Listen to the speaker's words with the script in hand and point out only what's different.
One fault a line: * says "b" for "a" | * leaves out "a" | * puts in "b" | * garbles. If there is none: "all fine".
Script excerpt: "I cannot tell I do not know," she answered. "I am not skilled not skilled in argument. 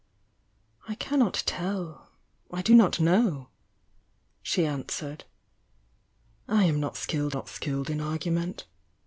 all fine